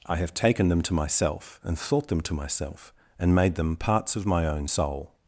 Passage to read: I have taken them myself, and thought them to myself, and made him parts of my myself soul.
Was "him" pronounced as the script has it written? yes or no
no